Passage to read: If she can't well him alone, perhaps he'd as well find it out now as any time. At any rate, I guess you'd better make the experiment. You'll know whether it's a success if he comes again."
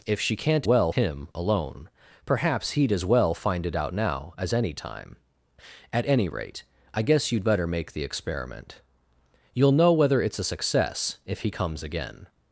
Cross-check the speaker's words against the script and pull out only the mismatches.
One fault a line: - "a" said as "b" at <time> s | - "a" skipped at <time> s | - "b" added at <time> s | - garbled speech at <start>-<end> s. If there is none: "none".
none